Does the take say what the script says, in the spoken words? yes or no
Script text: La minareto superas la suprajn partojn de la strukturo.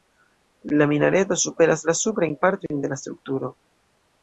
yes